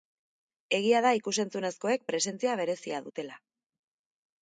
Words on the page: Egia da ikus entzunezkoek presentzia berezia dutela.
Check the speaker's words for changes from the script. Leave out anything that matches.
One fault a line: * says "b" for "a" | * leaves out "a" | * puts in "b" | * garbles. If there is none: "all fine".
all fine